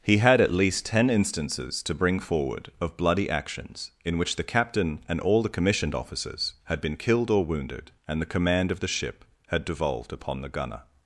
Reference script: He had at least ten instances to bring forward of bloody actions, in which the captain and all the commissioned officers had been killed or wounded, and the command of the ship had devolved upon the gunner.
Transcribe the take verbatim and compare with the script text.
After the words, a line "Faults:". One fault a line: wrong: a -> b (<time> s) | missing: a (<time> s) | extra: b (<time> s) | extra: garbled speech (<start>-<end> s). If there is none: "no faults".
He had at least ten instances to bring forward of bloody actions, in which the captain and all the commissioned officers had been killed or wounded, and the command of the ship had devolved upon the gunner.
Faults:
no faults